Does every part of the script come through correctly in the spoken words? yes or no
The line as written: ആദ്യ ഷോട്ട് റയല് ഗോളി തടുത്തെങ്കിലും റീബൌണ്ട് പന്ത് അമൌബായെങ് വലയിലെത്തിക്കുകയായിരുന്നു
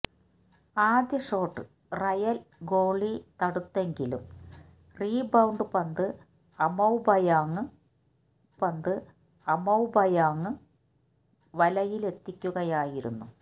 no